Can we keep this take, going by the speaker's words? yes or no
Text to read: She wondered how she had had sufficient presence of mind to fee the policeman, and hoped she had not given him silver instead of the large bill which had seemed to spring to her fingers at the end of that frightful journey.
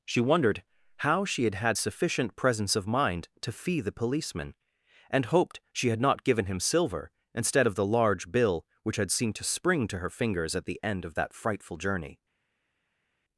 yes